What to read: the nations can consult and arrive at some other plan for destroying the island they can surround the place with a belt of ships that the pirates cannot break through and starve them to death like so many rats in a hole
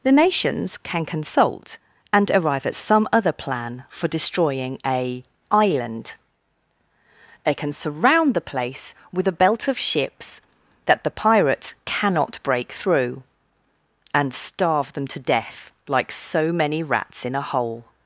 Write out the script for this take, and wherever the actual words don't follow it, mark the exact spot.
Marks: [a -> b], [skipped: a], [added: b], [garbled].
the nations can consult and arrive at some other plan for destroying [the -> a] island they can surround the place with a belt of ships that the pirates cannot break through and starve them to death like so many rats in a hole